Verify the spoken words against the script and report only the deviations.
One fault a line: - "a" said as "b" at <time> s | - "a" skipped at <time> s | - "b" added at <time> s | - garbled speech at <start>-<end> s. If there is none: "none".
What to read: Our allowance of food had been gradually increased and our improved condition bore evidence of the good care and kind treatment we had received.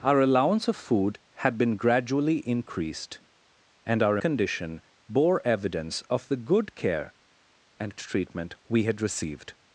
- "improved" skipped at 4.2 s
- "kind" skipped at 8.0 s